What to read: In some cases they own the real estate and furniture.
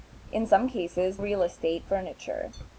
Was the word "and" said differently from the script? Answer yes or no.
yes